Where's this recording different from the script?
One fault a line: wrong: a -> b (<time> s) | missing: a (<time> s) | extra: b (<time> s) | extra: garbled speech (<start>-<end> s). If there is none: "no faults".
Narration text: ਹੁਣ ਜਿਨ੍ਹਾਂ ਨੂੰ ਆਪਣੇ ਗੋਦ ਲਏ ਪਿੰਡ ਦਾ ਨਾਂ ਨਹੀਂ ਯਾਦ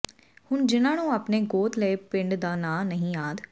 no faults